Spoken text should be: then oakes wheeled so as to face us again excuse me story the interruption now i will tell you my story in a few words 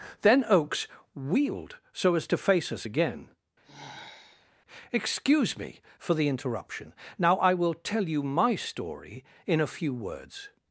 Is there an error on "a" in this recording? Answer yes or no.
no